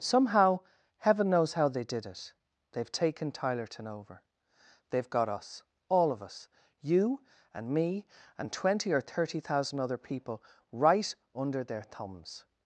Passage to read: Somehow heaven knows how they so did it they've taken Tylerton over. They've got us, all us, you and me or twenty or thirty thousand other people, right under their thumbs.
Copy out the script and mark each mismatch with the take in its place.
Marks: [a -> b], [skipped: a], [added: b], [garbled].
Somehow heaven knows how they [skipped: so] did it they've taken Tylerton over. They've got us, all [added: of] us, you and me [or -> and] twenty or thirty thousand other people, right under their thumbs.